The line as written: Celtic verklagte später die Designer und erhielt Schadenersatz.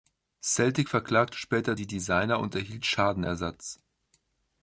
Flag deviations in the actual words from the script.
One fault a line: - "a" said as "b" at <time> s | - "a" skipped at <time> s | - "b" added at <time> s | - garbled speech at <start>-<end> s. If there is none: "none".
none